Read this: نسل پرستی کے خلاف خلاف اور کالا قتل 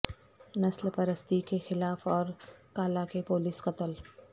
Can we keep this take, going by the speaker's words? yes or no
no